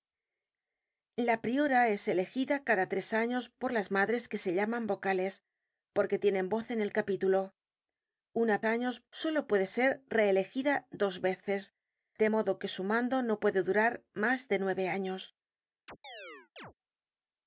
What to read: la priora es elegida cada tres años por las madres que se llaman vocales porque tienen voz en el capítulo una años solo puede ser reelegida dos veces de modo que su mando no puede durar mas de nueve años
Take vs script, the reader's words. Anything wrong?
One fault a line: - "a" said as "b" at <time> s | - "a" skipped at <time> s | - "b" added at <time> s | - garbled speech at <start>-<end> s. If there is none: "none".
none